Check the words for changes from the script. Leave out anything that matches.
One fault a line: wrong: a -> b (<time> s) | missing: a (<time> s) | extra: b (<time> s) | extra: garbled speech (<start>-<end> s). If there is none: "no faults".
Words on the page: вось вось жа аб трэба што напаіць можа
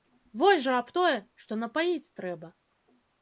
missing: вось (0.6 s)
wrong: трэба -> тое (1.0 s)
wrong: можа -> трэба (2.2 s)